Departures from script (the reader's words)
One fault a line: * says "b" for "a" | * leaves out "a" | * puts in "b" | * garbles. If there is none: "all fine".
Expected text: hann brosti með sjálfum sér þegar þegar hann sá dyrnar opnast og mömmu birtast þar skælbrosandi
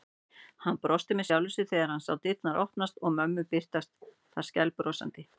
* leaves out "þegar"